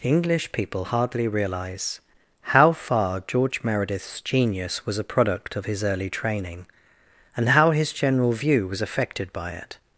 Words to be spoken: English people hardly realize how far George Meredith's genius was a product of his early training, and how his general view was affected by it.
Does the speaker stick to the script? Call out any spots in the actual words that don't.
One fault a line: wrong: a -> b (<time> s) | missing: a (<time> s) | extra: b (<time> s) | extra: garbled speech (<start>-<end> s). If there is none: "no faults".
no faults